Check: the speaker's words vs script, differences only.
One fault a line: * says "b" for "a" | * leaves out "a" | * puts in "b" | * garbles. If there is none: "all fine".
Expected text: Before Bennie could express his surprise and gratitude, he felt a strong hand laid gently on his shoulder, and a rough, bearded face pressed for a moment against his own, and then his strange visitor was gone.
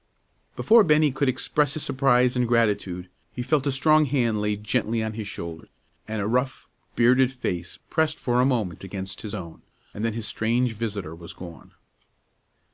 all fine